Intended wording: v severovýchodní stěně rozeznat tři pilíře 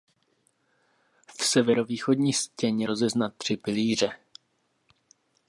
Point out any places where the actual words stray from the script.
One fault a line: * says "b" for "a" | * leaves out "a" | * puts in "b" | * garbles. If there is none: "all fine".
all fine